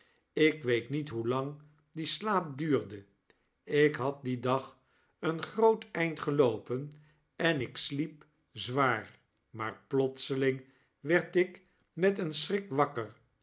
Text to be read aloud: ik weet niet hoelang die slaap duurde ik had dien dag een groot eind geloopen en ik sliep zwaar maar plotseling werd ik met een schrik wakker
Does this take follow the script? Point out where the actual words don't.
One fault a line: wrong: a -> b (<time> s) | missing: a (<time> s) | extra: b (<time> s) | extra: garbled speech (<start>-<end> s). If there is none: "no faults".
no faults